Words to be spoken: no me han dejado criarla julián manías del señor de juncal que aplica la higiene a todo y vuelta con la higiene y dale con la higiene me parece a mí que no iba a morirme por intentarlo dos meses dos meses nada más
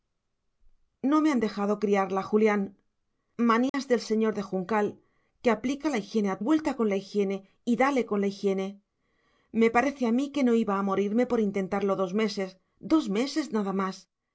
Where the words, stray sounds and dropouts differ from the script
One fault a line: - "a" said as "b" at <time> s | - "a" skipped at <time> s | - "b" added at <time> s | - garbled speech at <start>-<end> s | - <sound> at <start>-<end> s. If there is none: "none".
- dropout at 3.7-3.7 s
- "todo y" skipped at 6.4 s